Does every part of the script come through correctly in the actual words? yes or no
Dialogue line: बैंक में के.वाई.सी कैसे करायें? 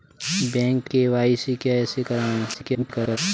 no